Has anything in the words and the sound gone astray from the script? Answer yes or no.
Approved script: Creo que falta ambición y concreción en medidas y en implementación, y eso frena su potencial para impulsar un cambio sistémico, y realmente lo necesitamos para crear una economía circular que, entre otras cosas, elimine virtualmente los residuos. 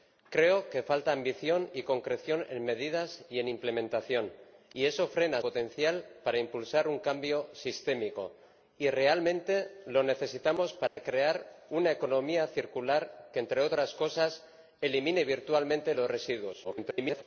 yes